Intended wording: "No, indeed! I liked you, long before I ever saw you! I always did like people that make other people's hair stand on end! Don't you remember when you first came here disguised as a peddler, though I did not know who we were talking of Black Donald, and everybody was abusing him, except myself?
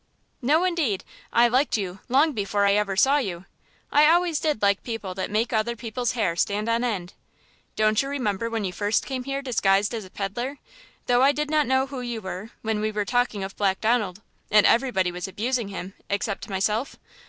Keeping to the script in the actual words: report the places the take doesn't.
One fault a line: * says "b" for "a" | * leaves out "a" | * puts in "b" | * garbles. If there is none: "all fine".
* puts in "you were when"